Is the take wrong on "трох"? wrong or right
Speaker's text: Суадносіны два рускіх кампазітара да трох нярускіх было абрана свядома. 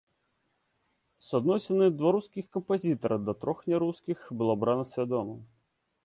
right